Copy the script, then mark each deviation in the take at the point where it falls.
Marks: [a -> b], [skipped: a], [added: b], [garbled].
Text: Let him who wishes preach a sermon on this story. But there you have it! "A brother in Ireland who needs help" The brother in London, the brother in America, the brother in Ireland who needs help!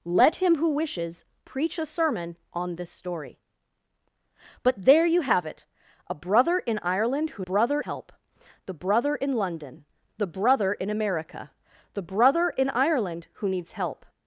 Let him who wishes preach a sermon on this story. But there you have it! "A brother in Ireland who [needs -> brother] help" The brother in London, the brother in America, the brother in Ireland who needs help!